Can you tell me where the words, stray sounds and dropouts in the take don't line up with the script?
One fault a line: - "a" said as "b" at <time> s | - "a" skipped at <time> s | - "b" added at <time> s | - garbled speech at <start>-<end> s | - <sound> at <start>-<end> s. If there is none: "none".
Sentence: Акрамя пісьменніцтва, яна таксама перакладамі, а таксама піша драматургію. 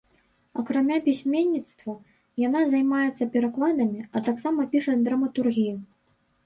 - "таксама" said as "займаецца" at 2.8 s